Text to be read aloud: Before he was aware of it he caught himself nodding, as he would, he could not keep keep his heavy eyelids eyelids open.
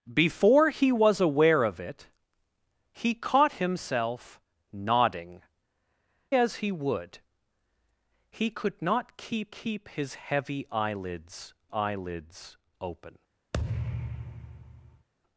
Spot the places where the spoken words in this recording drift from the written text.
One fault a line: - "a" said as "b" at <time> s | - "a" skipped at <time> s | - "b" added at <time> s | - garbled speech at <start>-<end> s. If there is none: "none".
none